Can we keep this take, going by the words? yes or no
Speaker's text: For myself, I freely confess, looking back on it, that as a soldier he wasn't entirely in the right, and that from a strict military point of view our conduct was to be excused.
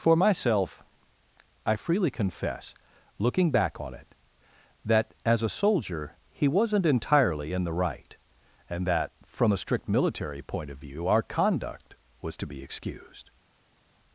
yes